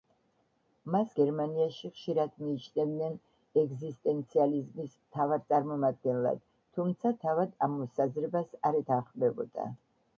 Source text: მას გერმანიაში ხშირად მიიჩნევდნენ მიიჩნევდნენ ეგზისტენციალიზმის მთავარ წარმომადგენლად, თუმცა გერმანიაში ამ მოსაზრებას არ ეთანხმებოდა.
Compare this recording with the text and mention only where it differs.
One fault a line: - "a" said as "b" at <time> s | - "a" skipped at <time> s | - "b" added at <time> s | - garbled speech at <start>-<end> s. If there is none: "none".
- "მიიჩნევდნენ" skipped at 3.2 s
- "გერმანიაში" said as "თავად" at 7.3 s